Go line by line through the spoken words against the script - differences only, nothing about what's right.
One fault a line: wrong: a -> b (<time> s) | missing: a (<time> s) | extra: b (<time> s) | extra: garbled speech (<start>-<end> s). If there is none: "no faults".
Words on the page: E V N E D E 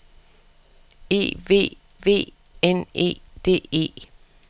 extra: V (2.0 s)